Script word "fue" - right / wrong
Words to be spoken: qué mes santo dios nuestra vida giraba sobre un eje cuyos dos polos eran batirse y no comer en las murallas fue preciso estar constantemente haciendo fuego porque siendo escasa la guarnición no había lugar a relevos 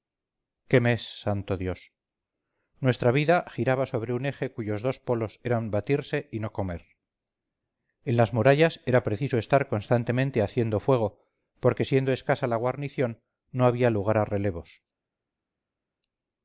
wrong